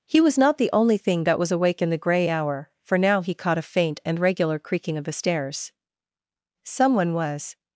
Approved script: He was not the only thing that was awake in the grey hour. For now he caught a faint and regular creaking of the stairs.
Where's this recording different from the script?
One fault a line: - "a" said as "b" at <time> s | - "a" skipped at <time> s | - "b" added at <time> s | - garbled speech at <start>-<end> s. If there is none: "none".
- "Someone was" added at 6.6 s